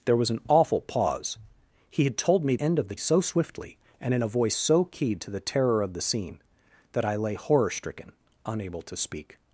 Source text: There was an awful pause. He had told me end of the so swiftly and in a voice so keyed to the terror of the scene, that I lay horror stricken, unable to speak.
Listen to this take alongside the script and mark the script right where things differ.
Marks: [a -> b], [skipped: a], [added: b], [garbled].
There was an awful pause. He had told me end of the so swiftly and in a voice so keyed to the terror of the scene, that I lay horror stricken, unable to speak.